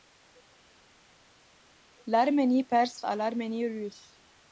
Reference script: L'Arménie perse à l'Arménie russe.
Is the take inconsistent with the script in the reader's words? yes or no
no